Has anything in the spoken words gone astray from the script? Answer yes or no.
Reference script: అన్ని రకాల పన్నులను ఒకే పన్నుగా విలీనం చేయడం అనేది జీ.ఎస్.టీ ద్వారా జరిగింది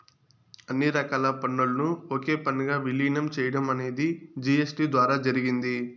no